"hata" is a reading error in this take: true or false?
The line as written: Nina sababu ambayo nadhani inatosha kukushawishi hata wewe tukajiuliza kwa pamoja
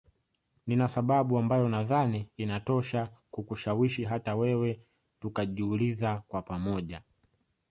false